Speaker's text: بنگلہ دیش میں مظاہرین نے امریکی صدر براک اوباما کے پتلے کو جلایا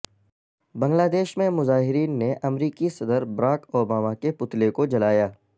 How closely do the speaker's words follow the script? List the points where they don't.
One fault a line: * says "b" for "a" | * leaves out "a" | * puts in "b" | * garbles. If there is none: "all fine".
all fine